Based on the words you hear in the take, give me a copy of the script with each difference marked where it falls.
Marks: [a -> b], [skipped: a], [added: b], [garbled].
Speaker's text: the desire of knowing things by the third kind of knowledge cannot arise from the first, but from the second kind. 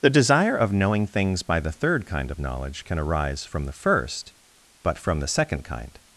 the desire of knowing things by the third kind of knowledge [cannot -> can] arise from the first, but from the second kind.